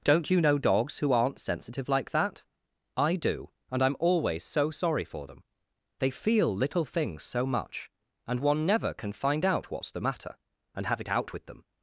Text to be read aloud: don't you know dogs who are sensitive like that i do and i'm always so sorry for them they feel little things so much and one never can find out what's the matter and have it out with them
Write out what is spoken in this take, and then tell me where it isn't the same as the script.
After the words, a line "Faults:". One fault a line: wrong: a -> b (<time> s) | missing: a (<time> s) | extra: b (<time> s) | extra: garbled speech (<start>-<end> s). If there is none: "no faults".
don't you know dogs who aren't sensitive like that i do and i'm always so sorry for them they feel little things so much and one never can find out what's the matter and have it out with them
Faults:
wrong: are -> aren't (1.1 s)